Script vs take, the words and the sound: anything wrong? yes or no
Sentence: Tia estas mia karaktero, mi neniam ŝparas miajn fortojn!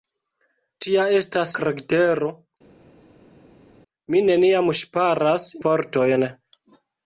yes